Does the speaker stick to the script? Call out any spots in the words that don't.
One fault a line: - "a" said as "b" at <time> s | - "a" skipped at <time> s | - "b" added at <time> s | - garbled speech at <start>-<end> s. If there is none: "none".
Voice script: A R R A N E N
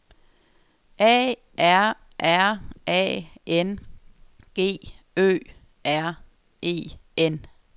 - "G Ø R" added at 4.5 s